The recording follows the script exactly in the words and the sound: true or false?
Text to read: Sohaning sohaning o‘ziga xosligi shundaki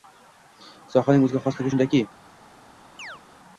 false